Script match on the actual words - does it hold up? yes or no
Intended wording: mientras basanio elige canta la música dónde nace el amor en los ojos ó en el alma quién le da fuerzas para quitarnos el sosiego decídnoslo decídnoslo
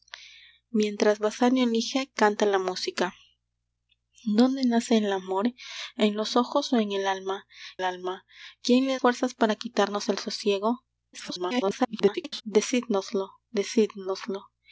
no